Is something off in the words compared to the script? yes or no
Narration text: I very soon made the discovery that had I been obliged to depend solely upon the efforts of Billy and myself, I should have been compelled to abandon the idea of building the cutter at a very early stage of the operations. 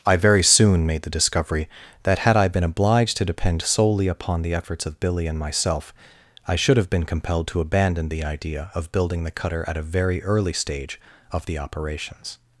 no